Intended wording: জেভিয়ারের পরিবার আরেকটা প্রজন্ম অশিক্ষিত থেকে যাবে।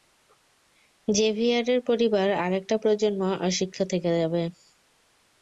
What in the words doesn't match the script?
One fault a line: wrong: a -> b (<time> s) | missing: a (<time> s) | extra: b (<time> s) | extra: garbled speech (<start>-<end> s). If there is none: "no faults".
no faults